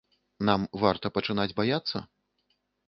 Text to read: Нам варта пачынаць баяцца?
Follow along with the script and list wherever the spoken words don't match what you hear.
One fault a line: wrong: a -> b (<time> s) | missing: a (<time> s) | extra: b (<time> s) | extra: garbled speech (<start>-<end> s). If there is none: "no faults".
no faults